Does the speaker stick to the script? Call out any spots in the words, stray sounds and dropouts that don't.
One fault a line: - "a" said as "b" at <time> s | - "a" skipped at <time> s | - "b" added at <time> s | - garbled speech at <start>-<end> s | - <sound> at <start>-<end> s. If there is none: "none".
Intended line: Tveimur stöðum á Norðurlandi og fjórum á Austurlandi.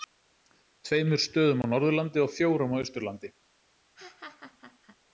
- laugh at 4.0-5.0 s